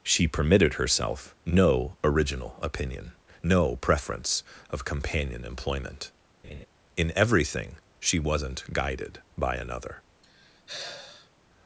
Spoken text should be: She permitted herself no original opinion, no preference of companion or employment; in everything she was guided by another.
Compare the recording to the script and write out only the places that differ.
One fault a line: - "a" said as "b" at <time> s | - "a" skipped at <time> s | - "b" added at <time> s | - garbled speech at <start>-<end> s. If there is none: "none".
- "or" skipped at 5.4 s
- "was" said as "wasn't" at 8.2 s